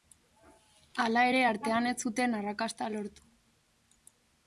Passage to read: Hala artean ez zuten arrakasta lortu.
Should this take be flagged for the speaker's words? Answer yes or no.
yes